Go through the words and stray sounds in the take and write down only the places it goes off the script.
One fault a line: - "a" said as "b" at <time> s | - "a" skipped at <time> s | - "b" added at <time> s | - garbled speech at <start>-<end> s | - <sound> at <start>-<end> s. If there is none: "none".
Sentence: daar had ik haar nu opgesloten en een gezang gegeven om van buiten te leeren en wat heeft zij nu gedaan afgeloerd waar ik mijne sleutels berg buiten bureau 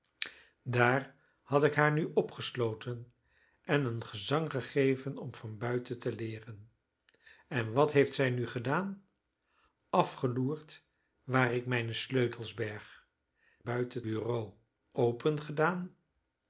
none